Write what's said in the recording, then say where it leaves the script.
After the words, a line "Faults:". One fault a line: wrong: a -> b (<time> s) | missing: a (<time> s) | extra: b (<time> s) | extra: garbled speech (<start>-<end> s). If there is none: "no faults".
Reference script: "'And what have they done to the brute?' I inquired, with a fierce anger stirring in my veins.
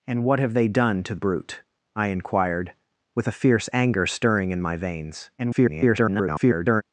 "'And what have they done to brute?' I inquired, with a fierce anger stirring in my veins. [garbled]
Faults:
missing: the (1.1 s)
extra: garbled speech (5.4-6.8 s)